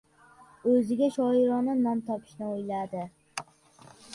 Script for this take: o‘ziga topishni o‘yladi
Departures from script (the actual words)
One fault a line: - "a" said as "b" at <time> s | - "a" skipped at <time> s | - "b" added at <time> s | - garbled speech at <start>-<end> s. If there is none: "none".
- "shoirona nom" added at 1.1 s